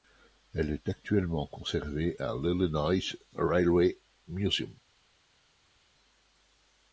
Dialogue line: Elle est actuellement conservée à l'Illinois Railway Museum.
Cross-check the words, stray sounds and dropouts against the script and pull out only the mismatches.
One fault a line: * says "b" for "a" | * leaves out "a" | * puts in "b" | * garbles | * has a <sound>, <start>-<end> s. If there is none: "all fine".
all fine